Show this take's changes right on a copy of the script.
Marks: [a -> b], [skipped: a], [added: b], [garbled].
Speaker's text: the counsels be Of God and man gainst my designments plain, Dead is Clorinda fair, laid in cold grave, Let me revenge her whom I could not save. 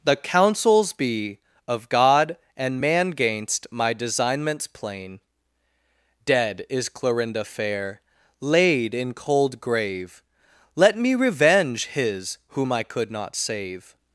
the counsels be Of God and man gainst my designments plain, Dead is Clorinda fair, laid in cold grave, Let me revenge [her -> his] whom I could not save.